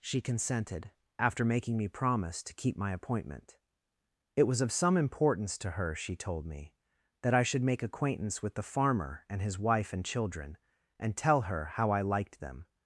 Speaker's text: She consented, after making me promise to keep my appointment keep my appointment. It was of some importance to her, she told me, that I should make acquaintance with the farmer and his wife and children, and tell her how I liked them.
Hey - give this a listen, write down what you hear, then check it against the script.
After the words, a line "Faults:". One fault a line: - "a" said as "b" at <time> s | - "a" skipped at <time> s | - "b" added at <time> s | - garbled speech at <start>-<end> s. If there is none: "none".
She consented, after making me promise to keep my appointment. It was of some importance to her, she told me, that I should make acquaintance with the farmer and his wife and children, and tell her how I liked them.
Faults:
- "keep my appointment" skipped at 3.6 s